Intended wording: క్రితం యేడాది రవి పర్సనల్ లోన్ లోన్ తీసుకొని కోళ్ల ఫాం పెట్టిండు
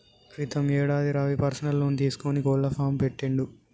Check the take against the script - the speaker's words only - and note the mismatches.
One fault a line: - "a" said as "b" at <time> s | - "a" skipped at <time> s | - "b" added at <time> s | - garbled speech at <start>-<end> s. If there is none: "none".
- "లోన్" skipped at 2.0 s